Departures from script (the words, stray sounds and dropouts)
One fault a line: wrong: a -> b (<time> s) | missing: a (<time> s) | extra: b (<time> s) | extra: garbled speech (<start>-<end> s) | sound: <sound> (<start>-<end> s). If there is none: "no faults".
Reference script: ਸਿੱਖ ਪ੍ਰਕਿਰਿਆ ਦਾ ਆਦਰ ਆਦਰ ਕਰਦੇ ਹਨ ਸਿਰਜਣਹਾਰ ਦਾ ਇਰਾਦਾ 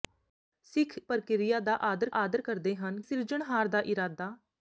no faults